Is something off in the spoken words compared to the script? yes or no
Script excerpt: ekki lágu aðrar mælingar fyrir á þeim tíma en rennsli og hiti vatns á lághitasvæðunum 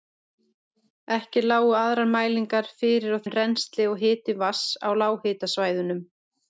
yes